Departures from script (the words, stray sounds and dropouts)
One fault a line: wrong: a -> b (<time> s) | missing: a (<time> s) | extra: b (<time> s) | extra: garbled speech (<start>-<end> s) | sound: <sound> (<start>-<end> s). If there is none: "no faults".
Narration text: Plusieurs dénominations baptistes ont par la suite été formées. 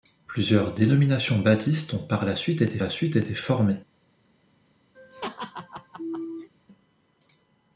extra: la suite été (2.8 s)
sound: laugh (4.9-6.5 s)